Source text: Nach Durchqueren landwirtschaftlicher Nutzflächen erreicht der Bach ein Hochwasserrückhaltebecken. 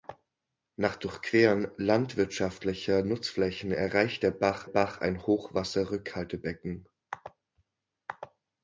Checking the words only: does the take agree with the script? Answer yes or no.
no